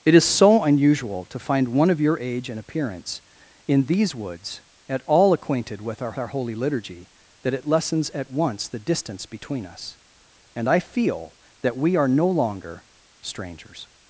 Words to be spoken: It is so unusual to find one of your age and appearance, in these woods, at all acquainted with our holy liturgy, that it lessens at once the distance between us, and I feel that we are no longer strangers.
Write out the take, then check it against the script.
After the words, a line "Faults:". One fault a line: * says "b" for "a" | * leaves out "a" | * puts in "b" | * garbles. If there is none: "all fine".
It is so unusual to find one of your age and appearance, in these woods, at all acquainted with our our holy liturgy, that it lessens at once the distance between us, and I feel that we are no longer strangers.
Faults:
* puts in "our"